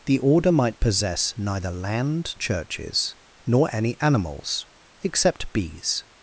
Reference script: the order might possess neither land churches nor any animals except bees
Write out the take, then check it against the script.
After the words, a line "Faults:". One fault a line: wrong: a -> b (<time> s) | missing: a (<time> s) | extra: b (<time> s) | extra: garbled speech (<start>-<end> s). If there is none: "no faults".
the order might possess neither land churches nor any animals except bees
Faults:
no faults